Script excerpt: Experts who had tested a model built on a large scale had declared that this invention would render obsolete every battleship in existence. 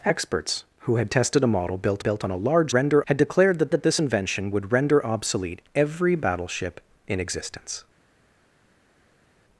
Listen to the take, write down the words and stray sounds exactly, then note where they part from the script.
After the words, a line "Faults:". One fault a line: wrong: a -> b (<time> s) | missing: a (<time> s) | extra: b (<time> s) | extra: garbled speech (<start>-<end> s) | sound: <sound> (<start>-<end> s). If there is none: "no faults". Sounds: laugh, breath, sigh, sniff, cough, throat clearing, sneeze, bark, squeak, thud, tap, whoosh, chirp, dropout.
Experts who had tested a model built built on a large render had declared that that this invention would render obsolete every battleship in existence.
Faults:
extra: built (2.0 s)
wrong: scale -> render (2.7 s)
extra: that (3.7 s)